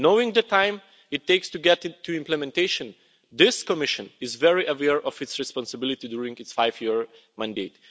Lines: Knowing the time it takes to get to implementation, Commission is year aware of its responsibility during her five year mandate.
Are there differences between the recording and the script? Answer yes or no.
yes